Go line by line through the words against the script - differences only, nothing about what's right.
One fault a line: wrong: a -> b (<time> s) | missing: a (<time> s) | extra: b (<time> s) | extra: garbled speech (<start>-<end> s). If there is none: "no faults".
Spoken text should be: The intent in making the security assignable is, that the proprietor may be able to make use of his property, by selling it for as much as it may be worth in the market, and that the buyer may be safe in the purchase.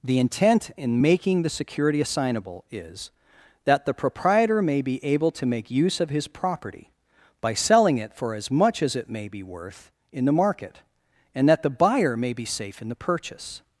no faults